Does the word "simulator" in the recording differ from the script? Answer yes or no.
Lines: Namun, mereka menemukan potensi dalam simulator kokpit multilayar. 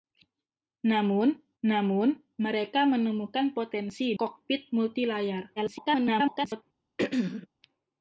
yes